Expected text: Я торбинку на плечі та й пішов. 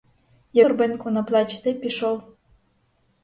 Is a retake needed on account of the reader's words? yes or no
no